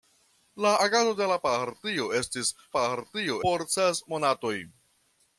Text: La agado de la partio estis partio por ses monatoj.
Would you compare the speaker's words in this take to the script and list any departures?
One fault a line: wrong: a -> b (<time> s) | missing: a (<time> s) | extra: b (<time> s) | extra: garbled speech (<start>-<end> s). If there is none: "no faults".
no faults